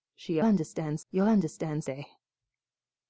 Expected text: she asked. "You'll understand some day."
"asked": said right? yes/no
no